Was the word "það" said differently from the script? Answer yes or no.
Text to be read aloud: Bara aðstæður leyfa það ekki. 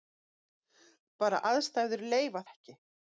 yes